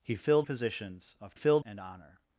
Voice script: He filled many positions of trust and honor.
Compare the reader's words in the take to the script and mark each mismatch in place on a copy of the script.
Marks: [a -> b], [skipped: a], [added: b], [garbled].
He filled [skipped: many] positions of [trust -> filled] and honor.